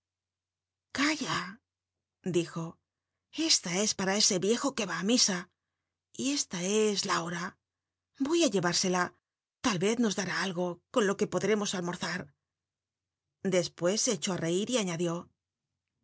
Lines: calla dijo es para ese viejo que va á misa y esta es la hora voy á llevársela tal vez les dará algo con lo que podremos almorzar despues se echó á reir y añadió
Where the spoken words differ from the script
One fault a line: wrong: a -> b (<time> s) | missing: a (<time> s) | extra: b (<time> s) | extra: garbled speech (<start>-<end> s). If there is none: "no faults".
extra: esta (3.5 s)
wrong: les -> nos (10.0 s)